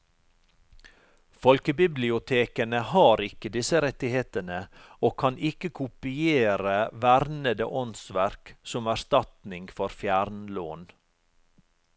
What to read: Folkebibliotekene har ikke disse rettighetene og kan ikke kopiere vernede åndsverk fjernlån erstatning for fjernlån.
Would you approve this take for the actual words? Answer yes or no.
no